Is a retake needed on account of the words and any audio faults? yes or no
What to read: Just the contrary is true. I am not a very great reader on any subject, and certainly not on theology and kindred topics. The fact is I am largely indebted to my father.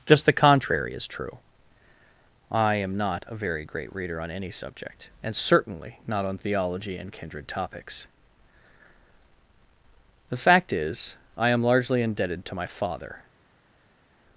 no